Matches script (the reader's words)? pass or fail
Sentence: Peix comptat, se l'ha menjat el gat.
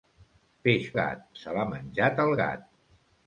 fail